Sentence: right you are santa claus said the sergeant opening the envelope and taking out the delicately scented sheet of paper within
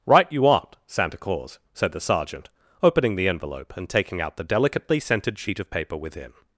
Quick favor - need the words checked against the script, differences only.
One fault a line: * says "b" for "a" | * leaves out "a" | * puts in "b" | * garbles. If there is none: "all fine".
* says "aren't" for "are"